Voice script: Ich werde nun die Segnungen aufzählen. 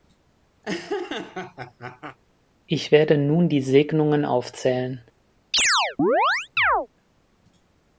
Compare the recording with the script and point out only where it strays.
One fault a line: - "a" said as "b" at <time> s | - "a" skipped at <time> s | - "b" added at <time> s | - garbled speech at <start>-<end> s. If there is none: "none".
none